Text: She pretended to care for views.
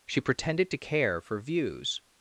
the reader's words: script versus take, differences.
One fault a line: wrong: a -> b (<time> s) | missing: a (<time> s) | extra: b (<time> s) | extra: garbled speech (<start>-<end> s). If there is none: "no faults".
no faults